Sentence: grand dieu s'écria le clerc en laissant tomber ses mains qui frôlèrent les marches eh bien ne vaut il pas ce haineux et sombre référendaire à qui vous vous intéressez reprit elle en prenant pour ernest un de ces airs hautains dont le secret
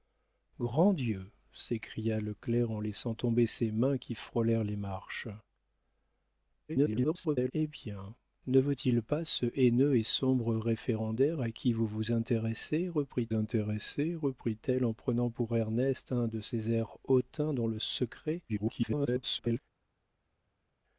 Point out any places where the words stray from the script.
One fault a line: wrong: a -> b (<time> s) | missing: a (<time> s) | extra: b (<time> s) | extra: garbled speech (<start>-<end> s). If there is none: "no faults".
extra: garbled speech (6.7-7.5 s)
extra: intéressez reprit (13.3 s)
extra: garbled speech (18.5-19.6 s)